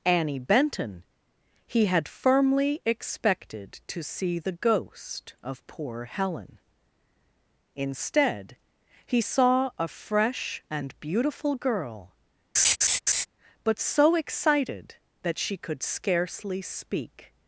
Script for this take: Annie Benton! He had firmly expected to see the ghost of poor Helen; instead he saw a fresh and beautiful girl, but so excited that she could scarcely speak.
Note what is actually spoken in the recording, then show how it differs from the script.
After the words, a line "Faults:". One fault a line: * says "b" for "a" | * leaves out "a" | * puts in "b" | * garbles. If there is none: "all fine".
Annie Benton! He had firmly expected to see the ghost of poor Helen; instead he saw a fresh and beautiful girl, but so excited that she could scarcely speak.
Faults:
all fine